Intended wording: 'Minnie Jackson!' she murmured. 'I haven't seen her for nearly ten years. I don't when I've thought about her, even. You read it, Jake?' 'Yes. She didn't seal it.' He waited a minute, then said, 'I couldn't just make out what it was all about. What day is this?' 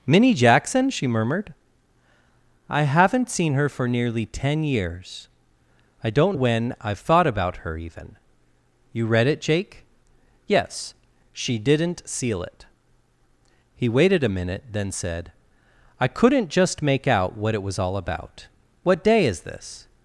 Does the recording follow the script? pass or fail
pass